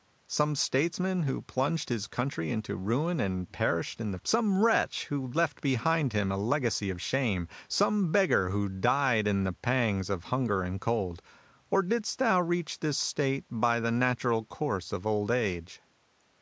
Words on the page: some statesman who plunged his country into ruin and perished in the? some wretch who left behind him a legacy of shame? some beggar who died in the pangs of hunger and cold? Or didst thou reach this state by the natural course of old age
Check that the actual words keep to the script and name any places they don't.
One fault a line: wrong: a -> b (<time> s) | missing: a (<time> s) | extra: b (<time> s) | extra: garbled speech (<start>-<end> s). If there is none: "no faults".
no faults